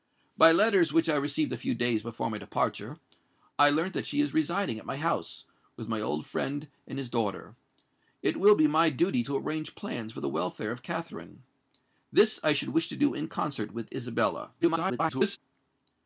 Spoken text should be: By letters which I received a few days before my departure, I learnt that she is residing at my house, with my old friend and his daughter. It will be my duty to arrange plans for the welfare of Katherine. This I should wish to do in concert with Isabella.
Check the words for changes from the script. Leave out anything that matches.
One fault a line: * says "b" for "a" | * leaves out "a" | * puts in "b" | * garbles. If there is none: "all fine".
* garbles